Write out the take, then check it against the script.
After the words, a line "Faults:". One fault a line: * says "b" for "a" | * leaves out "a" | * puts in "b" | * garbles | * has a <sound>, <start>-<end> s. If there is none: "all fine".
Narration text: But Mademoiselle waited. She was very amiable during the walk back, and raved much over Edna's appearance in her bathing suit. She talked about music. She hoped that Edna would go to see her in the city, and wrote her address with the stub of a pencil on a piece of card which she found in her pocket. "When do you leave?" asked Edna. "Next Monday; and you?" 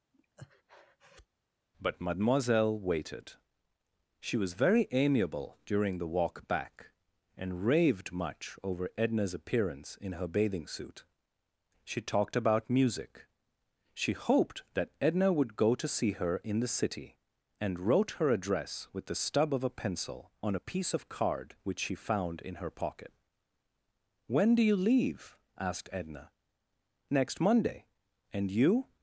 But Mademoiselle waited. She was very amiable during the walk back, and raved much over Edna's appearance in her bathing suit. She talked about music. She hoped that Edna would go to see her in the city, and wrote her address with the stub of a pencil on a piece of card which she found in her pocket. "When do you leave?" asked Edna. "Next Monday; and you?"
Faults:
* has a breath, 0.1-1.3 s